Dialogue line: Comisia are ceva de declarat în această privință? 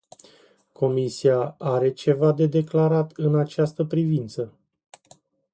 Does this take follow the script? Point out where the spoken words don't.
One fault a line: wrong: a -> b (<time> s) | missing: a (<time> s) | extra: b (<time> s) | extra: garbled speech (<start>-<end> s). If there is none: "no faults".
no faults